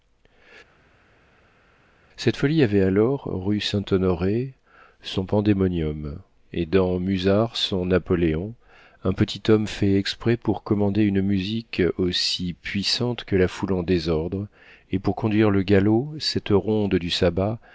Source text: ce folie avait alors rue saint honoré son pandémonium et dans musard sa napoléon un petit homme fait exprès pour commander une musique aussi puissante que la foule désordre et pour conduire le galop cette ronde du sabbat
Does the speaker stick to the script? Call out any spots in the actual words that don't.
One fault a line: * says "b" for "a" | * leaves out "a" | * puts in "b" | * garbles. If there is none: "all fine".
* says "cette" for "ce"
* says "son" for "sa"
* puts in "en"